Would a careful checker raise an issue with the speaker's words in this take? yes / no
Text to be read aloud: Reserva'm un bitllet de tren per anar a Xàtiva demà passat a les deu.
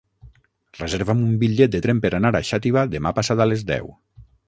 no